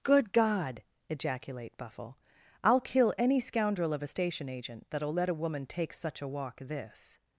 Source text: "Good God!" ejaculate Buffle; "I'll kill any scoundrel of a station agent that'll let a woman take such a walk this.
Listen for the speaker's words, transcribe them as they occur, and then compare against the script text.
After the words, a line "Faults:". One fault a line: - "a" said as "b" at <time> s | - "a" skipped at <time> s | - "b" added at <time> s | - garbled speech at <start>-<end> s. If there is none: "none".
"Good God!" ejaculate Buffle; "I'll kill any scoundrel of a station agent that'll let a woman take such a walk this.
Faults:
none